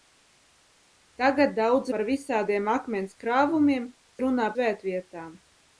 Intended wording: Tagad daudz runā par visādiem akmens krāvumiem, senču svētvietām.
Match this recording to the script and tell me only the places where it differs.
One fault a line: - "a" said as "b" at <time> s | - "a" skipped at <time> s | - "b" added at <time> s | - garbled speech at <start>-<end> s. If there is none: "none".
- "runā" skipped at 1.9 s
- "senču" said as "runā" at 4.2 s